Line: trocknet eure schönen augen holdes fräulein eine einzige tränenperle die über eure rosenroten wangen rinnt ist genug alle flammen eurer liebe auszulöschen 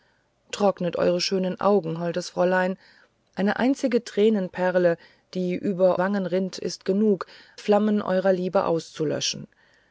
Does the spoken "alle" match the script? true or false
false